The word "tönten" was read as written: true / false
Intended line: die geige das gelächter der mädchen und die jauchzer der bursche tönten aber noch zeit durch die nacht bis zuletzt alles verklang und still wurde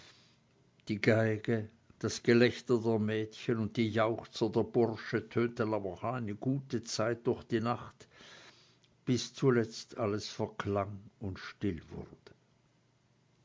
true